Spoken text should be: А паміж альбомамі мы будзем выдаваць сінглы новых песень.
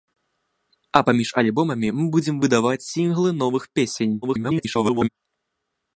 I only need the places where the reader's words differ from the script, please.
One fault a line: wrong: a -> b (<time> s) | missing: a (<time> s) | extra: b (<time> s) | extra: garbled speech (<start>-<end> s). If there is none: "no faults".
extra: garbled speech (4.2-5.1 s)